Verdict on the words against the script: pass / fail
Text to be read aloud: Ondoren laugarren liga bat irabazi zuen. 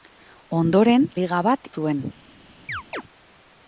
fail